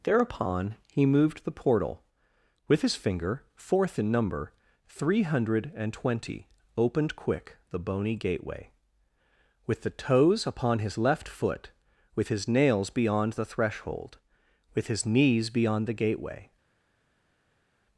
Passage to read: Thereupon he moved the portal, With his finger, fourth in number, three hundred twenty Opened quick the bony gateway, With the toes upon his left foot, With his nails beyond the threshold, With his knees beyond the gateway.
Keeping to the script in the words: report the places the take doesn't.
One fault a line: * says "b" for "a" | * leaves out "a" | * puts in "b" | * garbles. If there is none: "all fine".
* puts in "and"